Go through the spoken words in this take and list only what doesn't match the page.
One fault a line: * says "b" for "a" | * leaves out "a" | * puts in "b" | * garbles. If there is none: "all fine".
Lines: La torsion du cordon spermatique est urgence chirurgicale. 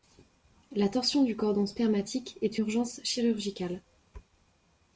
all fine